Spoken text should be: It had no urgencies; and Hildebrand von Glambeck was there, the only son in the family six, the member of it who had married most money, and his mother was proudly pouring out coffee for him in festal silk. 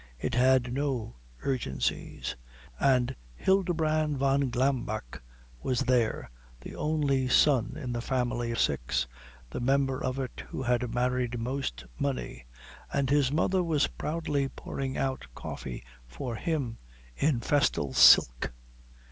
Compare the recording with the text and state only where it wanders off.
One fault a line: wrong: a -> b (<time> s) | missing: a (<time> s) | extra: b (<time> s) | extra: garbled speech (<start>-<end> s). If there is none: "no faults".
no faults